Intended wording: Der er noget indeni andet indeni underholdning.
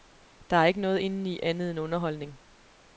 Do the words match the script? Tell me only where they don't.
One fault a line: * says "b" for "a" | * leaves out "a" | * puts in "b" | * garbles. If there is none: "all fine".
* puts in "ikke"
* says "end" for "indeni"